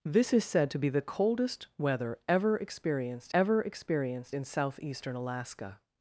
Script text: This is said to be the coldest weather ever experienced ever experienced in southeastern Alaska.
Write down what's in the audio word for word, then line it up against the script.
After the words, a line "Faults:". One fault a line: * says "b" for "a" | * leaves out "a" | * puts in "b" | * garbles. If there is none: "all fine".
This is said to be the coldest weather ever experienced ever experienced in southeastern Alaska.
Faults:
all fine